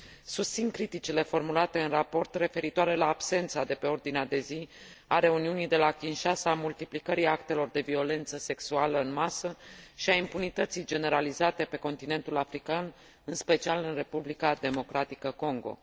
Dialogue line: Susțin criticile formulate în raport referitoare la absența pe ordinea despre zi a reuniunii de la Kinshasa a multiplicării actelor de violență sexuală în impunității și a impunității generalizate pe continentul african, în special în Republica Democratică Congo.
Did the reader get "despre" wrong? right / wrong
wrong